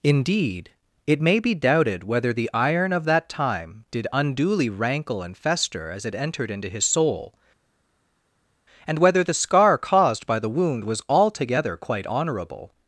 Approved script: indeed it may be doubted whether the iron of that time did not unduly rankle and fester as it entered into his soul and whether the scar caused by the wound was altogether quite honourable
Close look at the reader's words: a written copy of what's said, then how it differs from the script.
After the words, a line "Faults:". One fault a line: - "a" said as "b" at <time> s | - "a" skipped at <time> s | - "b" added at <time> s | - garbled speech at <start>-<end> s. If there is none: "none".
indeed it may be doubted whether the iron of that time did unduly rankle and fester as it entered into his soul and whether the scar caused by the wound was altogether quite honourable
Faults:
- "not" skipped at 4.1 s